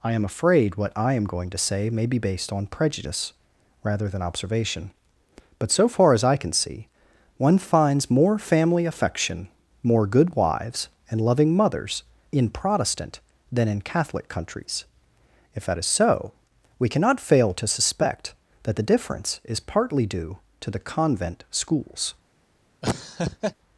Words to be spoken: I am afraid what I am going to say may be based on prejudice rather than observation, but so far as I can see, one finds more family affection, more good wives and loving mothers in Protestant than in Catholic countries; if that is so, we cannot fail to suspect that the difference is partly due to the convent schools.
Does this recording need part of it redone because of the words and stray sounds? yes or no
yes